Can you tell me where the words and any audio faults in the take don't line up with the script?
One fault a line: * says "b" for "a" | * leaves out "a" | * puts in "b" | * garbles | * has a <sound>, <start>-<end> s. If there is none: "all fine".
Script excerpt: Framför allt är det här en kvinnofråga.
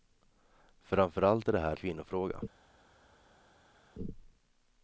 * leaves out "en"